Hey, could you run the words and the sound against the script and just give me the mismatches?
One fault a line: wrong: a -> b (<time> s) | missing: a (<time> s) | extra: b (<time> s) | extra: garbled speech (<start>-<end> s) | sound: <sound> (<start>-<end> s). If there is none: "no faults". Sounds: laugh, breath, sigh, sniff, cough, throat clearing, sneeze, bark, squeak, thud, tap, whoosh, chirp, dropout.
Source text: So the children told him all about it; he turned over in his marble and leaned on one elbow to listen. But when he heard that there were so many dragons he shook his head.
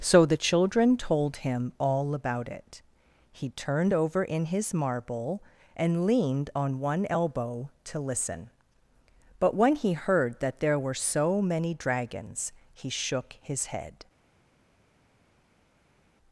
no faults